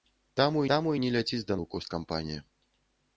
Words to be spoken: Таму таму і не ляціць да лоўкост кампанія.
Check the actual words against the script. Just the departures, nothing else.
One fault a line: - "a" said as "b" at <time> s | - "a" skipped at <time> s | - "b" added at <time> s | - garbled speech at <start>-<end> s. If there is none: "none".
none